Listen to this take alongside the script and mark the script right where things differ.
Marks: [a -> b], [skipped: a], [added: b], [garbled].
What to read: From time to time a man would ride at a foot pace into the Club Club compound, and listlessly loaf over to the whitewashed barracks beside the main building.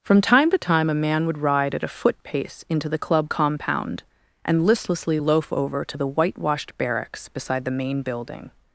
From time to time a man would ride at a foot pace into the Club [skipped: Club] compound, and listlessly loaf over to the whitewashed barracks beside the main building.